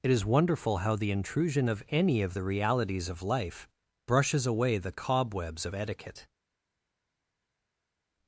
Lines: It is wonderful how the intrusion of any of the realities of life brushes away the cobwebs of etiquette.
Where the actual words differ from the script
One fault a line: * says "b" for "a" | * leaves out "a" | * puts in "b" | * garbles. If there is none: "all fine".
all fine